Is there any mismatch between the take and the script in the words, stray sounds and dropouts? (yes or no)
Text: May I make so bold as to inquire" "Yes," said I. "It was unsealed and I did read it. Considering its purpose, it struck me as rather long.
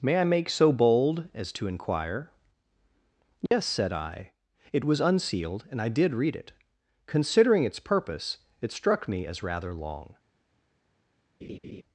yes